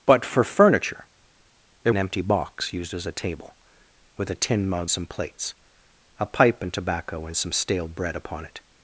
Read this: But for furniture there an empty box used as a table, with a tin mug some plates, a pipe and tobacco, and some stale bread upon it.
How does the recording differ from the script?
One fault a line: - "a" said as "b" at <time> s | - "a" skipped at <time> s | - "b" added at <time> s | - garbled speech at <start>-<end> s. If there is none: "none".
none